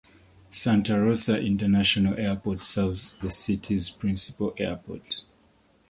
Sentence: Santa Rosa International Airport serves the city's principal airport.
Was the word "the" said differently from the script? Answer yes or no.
no